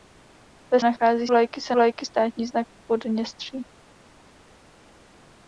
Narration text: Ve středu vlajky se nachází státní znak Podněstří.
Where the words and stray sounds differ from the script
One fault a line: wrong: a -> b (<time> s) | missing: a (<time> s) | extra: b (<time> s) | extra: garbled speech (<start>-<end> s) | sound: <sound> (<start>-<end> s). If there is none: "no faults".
wrong: středu -> nachází (0.8 s)
wrong: nachází -> vlajky (1.7 s)